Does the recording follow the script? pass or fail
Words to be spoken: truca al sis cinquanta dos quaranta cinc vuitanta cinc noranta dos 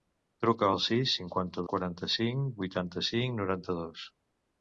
fail